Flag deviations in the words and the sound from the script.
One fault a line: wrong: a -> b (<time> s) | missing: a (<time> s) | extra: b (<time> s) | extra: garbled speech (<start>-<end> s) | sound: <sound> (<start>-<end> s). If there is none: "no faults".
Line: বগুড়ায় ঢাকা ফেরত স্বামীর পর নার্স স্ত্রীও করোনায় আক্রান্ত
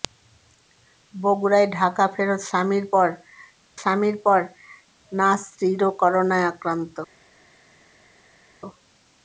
extra: স্বামীর পর (3.8 s)